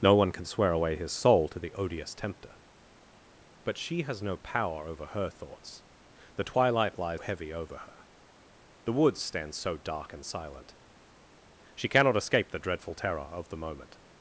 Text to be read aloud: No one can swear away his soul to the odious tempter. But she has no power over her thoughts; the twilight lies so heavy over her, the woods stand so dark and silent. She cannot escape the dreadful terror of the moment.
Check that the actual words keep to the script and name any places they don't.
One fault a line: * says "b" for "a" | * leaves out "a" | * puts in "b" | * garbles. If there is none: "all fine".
* leaves out "so"